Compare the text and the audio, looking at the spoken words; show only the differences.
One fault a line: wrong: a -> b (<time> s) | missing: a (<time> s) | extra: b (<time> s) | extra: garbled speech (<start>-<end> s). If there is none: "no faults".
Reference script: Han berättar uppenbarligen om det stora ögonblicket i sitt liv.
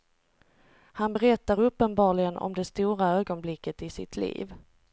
no faults